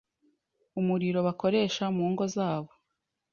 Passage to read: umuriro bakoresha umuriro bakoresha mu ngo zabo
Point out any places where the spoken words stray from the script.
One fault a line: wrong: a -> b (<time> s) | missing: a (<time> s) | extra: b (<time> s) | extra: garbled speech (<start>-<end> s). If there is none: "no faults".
missing: umuriro bakoresha (1.8 s)